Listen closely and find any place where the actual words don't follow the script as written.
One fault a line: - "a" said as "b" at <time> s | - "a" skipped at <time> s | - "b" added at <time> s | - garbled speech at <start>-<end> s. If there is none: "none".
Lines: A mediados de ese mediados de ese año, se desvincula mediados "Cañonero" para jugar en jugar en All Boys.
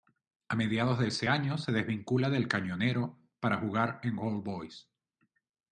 - "mediados de ese" skipped at 1.3 s
- "mediados" said as "del" at 2.3 s
- "jugar en" skipped at 4.2 s